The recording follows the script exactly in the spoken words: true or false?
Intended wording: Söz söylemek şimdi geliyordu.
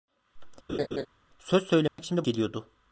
true